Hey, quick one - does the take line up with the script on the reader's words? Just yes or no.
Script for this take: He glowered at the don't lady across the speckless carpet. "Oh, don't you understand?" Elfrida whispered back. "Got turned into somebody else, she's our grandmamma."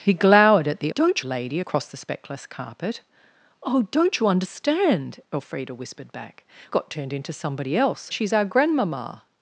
yes